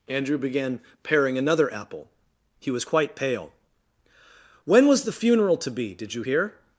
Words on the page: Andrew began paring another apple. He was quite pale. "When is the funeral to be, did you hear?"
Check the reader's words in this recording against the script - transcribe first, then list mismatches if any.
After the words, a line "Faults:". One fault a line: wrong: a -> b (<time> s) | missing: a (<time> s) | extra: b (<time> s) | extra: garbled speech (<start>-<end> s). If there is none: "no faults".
Andrew began paring another apple. He was quite pale. "When was the funeral to be, did you hear?"
Faults:
wrong: is -> was (4.9 s)